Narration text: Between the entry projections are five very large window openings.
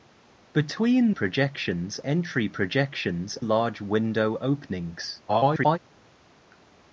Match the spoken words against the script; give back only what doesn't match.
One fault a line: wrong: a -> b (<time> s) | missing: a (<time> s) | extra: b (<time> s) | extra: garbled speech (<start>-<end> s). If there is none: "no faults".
wrong: the -> projections (1.1 s)
missing: are five very (3.4 s)
extra: garbled speech (5.3-5.8 s)